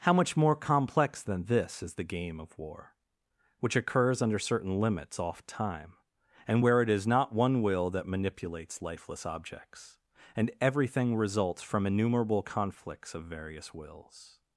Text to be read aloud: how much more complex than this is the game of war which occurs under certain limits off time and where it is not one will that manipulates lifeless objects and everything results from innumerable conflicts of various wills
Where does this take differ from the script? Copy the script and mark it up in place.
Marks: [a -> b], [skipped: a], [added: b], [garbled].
how much more complex than this is the game of war which occurs under certain limits off time and where it is not one will that manipulates lifeless objects and everything results from innumerable conflicts of various wills